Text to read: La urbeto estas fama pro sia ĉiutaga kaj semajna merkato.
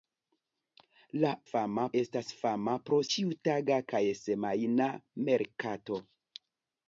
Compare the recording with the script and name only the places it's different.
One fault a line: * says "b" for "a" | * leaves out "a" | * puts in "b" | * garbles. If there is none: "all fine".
* says "fama" for "urbeto"
* leaves out "sia"